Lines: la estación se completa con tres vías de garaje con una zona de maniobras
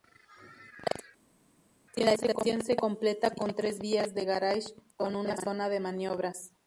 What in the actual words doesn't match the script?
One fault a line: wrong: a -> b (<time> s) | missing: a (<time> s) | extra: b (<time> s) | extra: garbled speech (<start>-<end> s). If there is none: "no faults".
no faults